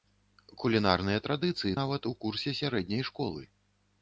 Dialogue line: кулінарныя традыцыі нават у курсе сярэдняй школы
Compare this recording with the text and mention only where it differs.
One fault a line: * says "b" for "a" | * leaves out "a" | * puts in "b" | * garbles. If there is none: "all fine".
all fine